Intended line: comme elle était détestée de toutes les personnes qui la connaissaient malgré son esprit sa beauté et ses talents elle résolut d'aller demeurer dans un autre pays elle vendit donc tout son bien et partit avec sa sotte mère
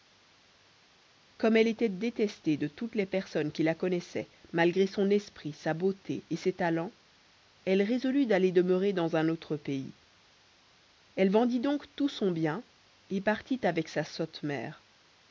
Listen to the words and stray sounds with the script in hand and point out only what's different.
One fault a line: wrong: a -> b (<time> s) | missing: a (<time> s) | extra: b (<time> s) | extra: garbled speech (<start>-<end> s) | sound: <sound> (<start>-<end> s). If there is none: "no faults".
no faults